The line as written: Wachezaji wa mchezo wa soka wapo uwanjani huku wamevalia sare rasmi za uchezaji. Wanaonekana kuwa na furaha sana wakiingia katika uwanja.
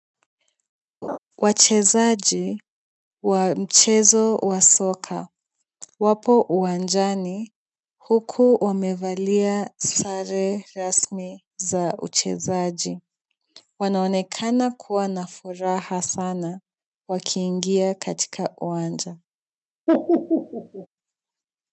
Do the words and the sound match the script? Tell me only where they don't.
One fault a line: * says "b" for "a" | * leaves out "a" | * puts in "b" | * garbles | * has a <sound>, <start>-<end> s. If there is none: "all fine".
* has a laugh, 1.0-1.2 s
* has a laugh, 19.9-20.9 s